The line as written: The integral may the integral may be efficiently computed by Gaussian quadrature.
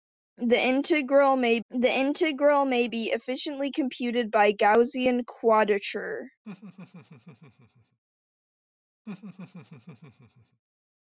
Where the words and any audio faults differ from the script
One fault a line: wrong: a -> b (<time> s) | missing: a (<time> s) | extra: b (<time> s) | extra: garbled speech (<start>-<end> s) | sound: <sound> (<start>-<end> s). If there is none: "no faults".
sound: laugh (6.4-8.0 s)
sound: laugh (9.1-10.6 s)